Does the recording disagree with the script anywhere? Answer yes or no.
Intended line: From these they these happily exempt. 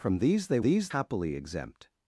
no